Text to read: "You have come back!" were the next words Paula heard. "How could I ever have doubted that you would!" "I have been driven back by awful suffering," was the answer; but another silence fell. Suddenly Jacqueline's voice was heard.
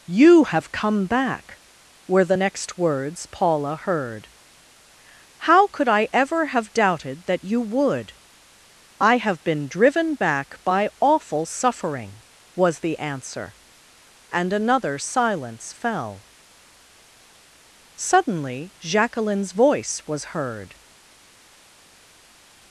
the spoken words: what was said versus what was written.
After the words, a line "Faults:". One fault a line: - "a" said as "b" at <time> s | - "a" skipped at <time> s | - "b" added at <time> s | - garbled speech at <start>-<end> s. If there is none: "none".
"You have come back!" were the next words Paula heard. "How could I ever have doubted that you would!" "I have been driven back by awful suffering," was the answer; and another silence fell. Suddenly Jacqueline's voice was heard.
Faults:
- "but" said as "and" at 14.3 s